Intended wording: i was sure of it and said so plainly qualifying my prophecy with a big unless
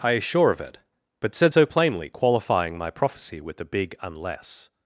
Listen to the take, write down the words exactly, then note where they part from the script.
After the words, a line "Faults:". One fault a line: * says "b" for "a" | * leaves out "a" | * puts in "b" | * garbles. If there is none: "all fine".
i is sure of it but said so plainly qualifying my prophecy with a big unless
Faults:
* says "is" for "was"
* says "but" for "and"